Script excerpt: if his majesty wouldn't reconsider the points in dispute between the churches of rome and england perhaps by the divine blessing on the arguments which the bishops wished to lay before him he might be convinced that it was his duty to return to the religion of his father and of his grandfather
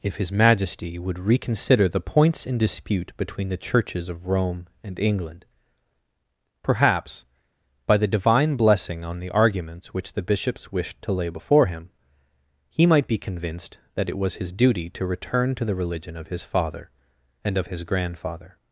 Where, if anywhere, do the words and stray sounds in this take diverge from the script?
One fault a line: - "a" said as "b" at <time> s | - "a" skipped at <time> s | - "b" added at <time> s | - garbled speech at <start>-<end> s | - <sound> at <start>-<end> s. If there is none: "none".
- "wouldn't" said as "would" at 1.0 s